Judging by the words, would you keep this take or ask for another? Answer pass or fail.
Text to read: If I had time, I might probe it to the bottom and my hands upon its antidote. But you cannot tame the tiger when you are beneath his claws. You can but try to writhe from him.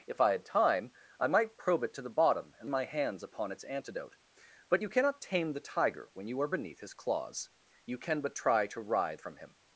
pass